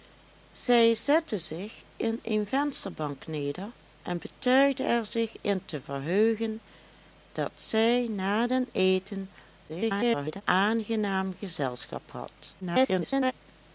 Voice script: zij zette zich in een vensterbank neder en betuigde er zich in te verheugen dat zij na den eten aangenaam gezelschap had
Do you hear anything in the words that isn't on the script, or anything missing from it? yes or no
yes